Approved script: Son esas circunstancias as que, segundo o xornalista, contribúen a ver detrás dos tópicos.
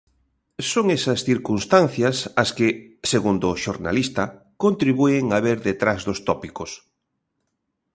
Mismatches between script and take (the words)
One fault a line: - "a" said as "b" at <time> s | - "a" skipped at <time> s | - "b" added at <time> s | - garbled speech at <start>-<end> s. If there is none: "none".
none